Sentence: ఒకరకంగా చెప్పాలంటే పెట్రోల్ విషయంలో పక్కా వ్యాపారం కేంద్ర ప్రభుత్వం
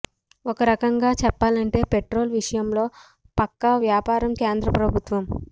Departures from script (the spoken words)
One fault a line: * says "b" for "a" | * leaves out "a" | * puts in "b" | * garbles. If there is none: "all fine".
all fine